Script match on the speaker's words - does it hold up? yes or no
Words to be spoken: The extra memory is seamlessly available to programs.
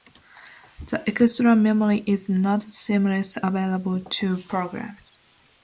no